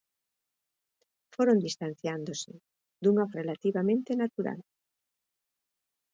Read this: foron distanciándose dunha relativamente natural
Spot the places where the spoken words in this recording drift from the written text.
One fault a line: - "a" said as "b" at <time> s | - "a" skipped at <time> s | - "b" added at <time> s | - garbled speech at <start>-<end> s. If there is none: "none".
none